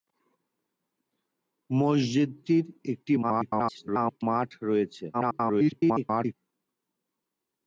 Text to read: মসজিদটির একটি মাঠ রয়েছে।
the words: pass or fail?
fail